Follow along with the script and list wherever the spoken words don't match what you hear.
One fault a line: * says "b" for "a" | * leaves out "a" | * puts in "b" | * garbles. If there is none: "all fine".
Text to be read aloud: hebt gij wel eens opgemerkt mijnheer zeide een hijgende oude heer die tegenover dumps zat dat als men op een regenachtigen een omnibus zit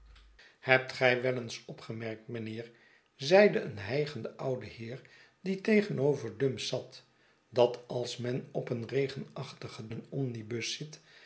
all fine